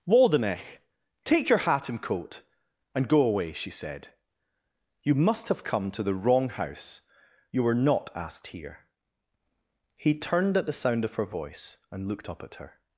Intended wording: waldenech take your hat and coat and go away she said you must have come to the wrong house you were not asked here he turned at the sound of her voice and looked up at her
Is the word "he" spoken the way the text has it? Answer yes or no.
yes